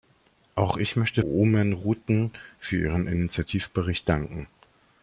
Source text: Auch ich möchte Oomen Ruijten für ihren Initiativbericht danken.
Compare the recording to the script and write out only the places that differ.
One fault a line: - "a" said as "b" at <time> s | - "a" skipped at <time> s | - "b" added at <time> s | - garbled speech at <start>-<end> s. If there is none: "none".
none